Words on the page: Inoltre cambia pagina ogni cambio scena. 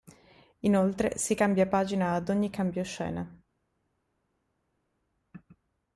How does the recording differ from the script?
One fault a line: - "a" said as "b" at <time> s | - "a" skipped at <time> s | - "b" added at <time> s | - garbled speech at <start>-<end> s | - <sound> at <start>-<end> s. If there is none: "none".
- "si" added at 1.2 s
- "ad" added at 2.1 s